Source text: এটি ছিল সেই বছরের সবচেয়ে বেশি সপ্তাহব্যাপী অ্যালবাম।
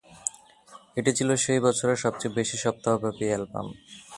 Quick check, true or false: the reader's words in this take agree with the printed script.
true